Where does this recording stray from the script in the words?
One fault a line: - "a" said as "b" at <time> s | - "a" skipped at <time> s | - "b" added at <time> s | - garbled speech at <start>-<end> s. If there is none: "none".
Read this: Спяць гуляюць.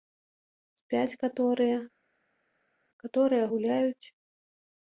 - "каторыя каторыя" added at 1.2 s